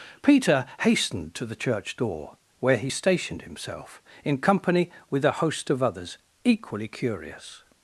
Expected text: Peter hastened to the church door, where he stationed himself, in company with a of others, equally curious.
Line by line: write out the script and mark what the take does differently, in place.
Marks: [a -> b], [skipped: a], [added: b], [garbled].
Peter hastened to the church door, where he stationed himself, in company with a [added: host] of others, equally curious.